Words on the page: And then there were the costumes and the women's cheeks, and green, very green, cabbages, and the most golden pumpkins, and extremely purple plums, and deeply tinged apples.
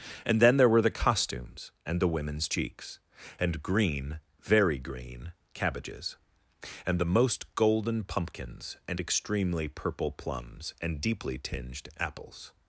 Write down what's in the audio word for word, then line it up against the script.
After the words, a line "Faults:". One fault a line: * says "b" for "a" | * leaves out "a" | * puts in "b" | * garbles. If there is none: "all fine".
And then there were the costumes and the women's cheeks, and green, very green, cabbages, and the most golden pumpkins, and extremely purple plums, and deeply tinged apples.
Faults:
all fine